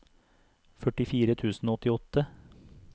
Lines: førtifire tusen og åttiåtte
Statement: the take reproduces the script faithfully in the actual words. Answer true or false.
true